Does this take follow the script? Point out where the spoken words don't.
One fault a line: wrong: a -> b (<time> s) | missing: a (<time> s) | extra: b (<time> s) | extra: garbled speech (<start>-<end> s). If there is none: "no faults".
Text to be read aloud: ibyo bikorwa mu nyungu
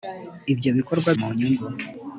no faults